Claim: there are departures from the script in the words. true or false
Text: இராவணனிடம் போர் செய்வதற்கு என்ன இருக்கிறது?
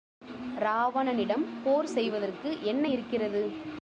false